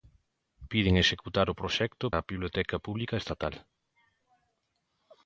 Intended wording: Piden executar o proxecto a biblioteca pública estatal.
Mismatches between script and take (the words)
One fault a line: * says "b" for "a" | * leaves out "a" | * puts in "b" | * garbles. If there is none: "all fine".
all fine